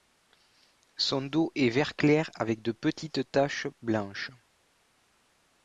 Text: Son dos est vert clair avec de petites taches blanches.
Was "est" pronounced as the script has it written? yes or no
yes